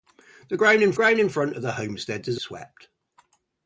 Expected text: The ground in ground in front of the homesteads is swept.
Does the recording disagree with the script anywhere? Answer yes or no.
no